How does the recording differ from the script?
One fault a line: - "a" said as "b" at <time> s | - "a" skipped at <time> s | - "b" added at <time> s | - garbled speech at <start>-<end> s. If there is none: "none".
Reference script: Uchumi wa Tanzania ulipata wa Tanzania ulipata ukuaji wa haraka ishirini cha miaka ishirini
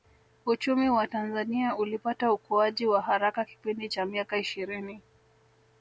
- "wa Tanzania ulipata" skipped at 2.3 s
- "ishirini" said as "kipindi" at 3.4 s